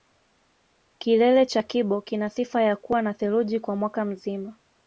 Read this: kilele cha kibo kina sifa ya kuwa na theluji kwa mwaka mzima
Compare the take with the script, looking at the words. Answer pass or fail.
pass